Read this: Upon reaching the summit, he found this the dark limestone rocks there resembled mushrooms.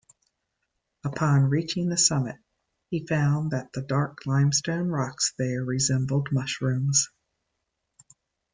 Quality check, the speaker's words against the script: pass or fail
fail